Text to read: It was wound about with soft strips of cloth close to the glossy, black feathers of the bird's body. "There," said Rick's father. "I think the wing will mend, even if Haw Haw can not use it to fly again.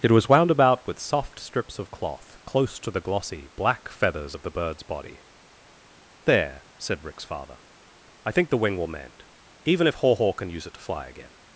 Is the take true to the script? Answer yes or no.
no